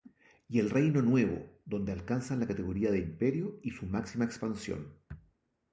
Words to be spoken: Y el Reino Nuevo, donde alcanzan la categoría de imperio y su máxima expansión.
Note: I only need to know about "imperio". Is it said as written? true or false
true